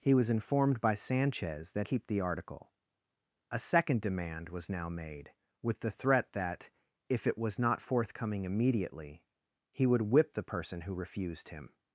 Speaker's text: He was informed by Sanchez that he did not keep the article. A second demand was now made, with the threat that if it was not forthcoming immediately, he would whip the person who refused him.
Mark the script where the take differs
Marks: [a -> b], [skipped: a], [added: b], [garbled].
He was informed by Sanchez that [skipped: he did not] keep the article. A second demand was now made, with the threat that if it was not forthcoming immediately, he would whip the person who refused him.